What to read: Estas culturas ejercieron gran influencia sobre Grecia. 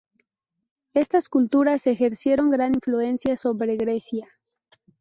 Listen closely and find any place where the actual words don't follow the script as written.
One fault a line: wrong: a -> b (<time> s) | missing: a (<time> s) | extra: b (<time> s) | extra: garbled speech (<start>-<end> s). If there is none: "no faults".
no faults